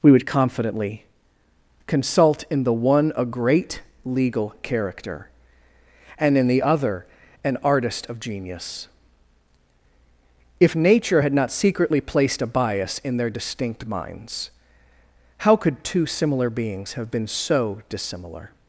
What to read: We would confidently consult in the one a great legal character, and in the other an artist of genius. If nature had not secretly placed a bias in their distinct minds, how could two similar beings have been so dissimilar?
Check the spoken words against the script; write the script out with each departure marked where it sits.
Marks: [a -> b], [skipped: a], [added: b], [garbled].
We would confidently consult in the one a great legal character, and in the other an artist of genius. If nature had not secretly placed a bias in their distinct minds, how could two similar beings have been so dissimilar?